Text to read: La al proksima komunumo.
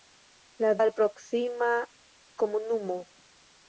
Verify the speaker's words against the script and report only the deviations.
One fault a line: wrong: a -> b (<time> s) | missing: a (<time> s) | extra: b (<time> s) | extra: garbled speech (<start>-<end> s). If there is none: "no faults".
no faults